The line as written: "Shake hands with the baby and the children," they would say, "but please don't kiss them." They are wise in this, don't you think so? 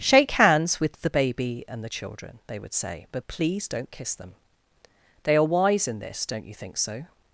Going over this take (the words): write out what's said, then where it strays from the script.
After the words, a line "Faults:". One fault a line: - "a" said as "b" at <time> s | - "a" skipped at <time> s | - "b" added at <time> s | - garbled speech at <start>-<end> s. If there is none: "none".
"Shake hands with the baby and the children," they would say, "but please don't kiss them." They are wise in this, don't you think so?
Faults:
none